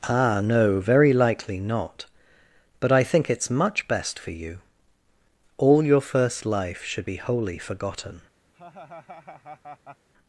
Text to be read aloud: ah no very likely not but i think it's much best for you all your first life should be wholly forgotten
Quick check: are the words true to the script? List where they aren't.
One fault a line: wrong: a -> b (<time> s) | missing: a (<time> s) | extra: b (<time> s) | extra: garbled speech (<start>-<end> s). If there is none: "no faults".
no faults